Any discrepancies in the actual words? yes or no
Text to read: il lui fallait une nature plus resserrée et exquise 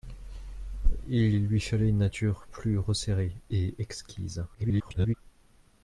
yes